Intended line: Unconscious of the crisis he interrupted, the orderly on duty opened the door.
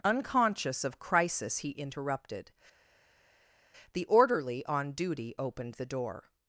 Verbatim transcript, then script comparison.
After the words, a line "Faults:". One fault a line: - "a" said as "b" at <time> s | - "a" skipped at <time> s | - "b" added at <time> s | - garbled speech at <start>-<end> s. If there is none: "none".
Unconscious of crisis he interrupted, the orderly on duty opened the door.
Faults:
- "the" skipped at 1.0 s